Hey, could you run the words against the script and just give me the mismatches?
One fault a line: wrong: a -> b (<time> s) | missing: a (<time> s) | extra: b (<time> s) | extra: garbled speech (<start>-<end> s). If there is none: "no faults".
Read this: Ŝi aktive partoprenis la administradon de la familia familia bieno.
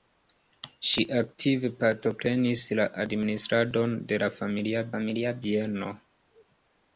no faults